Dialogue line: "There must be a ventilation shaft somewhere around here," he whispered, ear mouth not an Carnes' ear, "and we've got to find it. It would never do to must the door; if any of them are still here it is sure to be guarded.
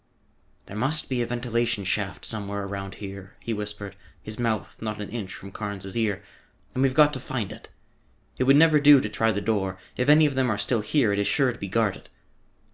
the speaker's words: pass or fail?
fail